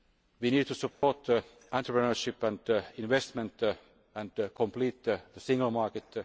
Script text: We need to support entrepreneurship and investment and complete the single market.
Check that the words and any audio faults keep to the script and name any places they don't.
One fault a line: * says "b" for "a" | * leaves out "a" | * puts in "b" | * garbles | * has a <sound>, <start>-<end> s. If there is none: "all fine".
* has a dropout, 0.9-1.0 s